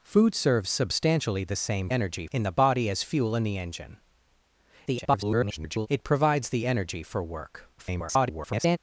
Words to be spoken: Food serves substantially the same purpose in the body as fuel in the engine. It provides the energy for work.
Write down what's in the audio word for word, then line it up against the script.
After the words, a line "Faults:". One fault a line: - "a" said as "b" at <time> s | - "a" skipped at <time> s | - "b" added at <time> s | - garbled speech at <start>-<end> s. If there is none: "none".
Food serves substantially the same energy in the body as fuel in the engine. [garbled] It provides the energy for work. [garbled]
Faults:
- "purpose" said as "energy" at 1.9 s
- garbled speech at 4.9-5.9 s
- garbled speech at 7.8-8.8 s